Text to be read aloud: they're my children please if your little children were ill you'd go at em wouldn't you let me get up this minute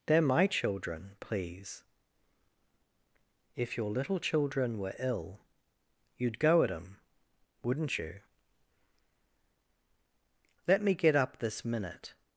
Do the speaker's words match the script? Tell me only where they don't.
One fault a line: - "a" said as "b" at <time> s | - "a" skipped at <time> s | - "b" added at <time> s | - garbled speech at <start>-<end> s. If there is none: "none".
none